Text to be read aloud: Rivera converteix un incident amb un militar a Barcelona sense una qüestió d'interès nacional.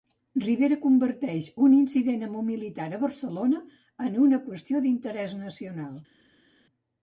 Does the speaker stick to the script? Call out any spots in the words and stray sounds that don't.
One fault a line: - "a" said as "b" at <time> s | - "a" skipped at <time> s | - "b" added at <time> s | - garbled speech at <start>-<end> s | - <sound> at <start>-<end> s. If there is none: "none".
- "sense" said as "en" at 4.1 s